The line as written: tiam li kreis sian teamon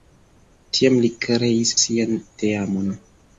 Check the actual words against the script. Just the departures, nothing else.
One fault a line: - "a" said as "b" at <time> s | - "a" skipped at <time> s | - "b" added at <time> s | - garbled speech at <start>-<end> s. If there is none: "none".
none